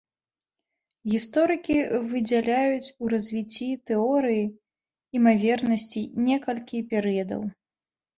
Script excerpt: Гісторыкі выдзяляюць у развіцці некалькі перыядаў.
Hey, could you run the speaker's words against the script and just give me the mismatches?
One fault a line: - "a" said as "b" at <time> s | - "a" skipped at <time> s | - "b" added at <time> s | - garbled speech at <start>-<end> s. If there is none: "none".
- "тэорыі імавернасцей" added at 3.9 s